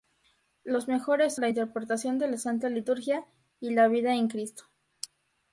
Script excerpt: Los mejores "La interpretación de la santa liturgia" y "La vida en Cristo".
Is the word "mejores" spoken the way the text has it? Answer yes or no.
yes